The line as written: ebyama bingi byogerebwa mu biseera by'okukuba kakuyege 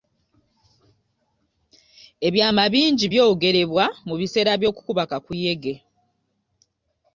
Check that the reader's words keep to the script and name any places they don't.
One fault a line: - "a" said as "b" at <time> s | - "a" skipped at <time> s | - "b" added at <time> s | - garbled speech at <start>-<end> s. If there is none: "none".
none